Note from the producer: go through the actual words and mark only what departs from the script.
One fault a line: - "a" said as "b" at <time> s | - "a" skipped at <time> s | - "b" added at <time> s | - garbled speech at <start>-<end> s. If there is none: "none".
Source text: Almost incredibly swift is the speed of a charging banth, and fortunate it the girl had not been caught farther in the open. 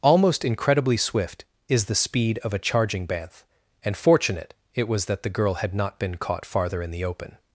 - "was that" added at 4.9 s